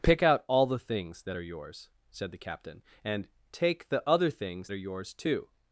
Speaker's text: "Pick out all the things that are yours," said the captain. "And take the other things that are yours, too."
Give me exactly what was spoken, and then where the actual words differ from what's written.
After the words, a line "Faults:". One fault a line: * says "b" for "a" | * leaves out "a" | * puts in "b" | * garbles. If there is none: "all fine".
"Pick out all the things that are yours," said the captain. "And take the other things are yours, too."
Faults:
* leaves out "that"